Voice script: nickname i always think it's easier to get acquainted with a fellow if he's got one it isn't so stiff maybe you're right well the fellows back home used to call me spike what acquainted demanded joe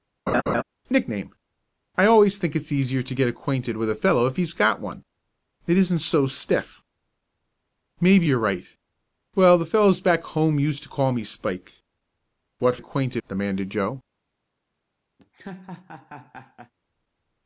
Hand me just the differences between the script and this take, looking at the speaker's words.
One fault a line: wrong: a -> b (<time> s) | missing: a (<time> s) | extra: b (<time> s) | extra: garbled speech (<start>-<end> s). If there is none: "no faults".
no faults